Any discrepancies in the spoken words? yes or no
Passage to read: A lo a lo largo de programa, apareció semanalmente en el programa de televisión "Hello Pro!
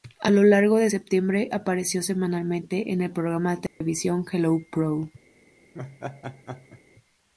yes